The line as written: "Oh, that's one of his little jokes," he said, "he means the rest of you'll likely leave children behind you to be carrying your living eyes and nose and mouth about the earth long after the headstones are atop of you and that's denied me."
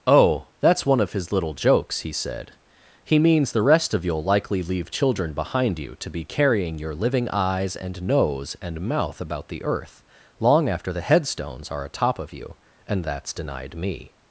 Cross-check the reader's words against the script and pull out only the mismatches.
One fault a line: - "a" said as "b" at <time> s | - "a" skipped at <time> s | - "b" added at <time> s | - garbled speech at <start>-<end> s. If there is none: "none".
none